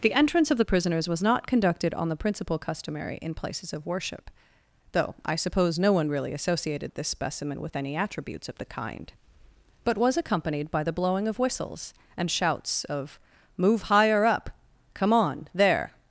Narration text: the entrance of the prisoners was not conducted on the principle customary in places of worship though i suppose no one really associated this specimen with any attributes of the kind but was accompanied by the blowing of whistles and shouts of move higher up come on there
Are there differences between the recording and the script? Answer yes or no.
no